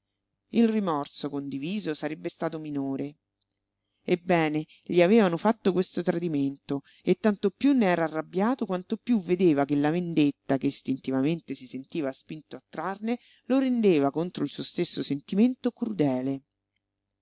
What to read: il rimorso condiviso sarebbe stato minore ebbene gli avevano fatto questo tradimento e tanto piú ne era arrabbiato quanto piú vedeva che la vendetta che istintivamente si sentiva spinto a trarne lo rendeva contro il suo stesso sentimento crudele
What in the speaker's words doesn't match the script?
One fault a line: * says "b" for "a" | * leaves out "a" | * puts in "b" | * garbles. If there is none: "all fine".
all fine